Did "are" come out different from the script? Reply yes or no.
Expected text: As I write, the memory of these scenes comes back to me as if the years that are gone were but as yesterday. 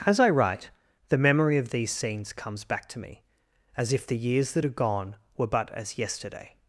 no